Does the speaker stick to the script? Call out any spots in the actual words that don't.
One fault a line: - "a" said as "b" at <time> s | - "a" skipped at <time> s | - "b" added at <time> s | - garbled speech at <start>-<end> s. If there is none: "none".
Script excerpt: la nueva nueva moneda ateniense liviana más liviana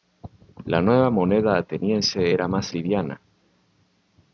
- "nueva" skipped at 1.1 s
- "liviana" said as "era" at 2.3 s